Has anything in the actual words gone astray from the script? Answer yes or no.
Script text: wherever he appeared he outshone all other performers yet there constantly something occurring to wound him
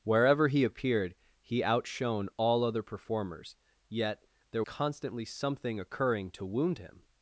no